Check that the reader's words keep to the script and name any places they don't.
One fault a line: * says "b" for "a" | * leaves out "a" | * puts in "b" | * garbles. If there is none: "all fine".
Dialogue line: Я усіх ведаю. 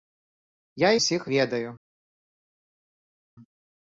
all fine